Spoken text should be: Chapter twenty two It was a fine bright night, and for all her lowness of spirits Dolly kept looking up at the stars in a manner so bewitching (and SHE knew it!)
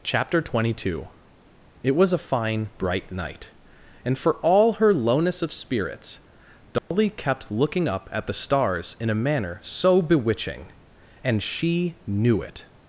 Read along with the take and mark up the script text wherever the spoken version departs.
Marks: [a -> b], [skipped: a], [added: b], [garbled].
Chapter twenty two It was a fine bright night, and for all her lowness of spirits Dolly kept looking up at the stars in a manner so bewitching (and SHE knew it!)